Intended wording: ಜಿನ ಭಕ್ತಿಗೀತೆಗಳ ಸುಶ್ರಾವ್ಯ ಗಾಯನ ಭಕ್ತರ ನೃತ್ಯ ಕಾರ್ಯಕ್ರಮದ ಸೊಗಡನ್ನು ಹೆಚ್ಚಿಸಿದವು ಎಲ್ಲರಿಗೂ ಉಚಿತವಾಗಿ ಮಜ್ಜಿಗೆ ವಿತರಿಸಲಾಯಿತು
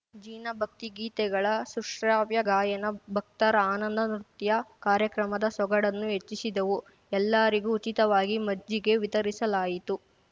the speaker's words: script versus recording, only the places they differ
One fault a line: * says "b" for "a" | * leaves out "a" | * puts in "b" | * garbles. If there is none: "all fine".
* puts in "ಆನಂದ"